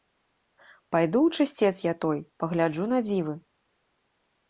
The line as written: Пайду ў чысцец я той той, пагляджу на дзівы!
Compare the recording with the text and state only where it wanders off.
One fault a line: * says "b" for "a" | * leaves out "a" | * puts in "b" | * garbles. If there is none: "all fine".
* leaves out "той"